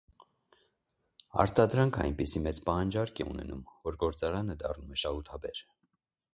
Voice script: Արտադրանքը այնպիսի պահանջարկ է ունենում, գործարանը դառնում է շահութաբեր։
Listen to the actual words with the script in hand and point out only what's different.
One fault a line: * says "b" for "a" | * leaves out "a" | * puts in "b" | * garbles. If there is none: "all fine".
* puts in "մեծ"
* puts in "որ"